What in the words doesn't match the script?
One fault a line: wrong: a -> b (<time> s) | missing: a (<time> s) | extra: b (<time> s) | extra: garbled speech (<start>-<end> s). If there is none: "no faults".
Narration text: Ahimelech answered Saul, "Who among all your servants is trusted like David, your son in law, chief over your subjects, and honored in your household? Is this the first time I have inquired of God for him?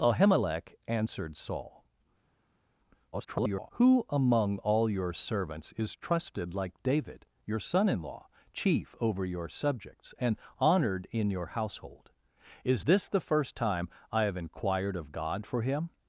extra: garbled speech (3.1-3.7 s)